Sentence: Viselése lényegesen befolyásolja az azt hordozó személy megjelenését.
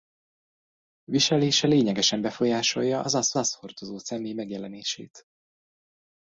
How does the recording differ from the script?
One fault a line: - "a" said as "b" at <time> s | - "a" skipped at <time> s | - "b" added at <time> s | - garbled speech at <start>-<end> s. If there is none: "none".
- "azt" added at 3.4 s